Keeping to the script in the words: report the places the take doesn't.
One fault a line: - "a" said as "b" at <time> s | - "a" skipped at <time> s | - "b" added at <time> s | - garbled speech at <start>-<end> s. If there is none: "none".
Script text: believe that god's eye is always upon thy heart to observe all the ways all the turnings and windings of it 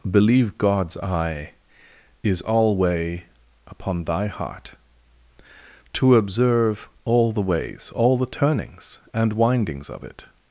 - "that" skipped at 0.6 s
- "always" said as "alway" at 2.4 s